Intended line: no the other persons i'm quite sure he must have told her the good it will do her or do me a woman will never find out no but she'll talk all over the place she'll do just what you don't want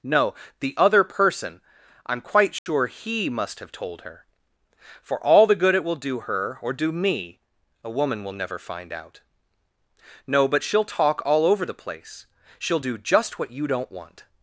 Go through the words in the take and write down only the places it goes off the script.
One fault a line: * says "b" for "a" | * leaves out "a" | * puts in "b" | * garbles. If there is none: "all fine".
* says "person" for "persons"
* puts in "for all"